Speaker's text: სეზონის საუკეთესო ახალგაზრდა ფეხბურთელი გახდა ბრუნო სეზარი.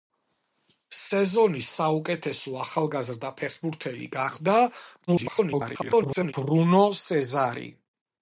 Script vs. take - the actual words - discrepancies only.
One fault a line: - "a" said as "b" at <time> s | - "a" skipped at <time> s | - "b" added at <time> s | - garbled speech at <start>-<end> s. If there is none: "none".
- garbled speech at 5.1-6.3 s